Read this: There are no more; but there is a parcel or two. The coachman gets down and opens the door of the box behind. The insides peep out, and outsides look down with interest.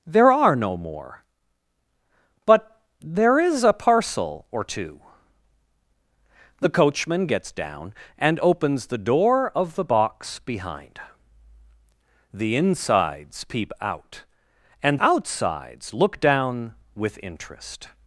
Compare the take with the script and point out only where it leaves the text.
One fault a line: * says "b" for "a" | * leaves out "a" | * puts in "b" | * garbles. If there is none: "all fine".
all fine